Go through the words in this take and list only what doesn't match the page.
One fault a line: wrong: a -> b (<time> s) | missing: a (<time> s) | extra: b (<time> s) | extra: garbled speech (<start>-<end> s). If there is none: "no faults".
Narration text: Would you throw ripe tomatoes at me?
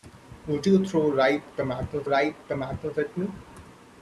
extra: ripe tomatoes (2.0 s)